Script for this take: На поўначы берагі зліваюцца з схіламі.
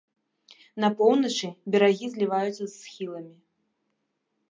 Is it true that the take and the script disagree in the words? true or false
false